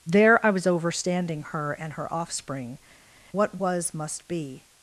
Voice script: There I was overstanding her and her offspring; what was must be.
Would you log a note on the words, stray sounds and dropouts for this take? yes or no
no